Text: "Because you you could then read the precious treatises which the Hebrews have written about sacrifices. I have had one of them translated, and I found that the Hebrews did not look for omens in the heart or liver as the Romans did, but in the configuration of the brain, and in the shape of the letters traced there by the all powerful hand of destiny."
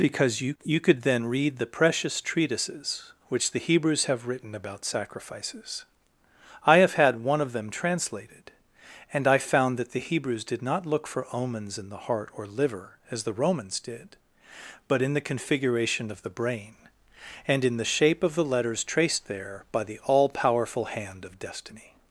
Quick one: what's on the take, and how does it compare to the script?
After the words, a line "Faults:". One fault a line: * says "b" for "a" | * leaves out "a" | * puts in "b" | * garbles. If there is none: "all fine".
"Because you you could then read the precious treatises which the Hebrews have written about sacrifices. I have had one of them translated, and I found that the Hebrews did not look for omens in the heart or liver as the Romans did, but in the configuration of the brain, and in the shape of the letters traced there by the all powerful hand of destiny."
Faults:
all fine